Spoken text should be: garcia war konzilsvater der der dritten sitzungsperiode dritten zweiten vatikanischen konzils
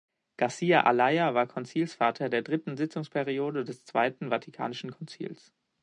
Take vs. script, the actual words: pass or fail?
fail